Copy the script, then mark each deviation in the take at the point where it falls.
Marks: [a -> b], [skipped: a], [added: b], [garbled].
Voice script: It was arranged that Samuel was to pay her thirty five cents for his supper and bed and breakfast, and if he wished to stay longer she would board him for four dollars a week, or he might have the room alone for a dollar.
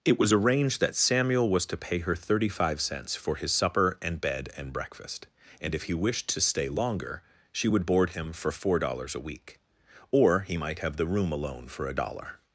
It was arranged that Samuel was to pay her thirty five cents for his supper and bed and breakfast, and if he wished to stay longer she would board him for four dollars a week, or he might have the room alone for a dollar.